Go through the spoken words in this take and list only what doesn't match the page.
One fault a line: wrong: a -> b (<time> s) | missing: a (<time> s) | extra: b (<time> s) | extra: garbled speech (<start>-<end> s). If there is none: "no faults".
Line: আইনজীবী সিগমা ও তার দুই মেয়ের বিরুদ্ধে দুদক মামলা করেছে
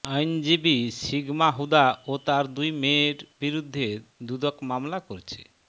extra: হুদা (1.6 s)